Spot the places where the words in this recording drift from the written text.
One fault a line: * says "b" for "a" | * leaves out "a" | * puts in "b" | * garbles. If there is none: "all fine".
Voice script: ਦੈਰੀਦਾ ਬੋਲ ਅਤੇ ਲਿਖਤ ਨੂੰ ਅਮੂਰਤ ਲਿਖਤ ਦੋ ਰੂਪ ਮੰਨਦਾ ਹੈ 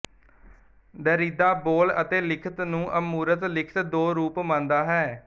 all fine